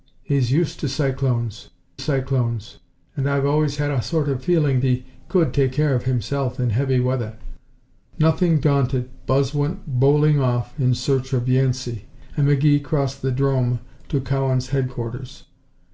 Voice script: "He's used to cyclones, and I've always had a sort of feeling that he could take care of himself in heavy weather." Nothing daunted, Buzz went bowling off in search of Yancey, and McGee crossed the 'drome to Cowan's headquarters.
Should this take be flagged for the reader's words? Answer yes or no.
yes